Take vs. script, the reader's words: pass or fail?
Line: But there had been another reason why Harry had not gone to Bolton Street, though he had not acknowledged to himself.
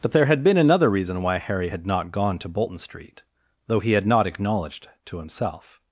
pass